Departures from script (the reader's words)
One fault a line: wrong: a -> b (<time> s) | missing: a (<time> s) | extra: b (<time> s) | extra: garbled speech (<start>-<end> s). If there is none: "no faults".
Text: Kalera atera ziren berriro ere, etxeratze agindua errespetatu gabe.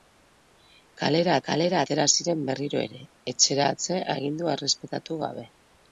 extra: kalera (1.5 s)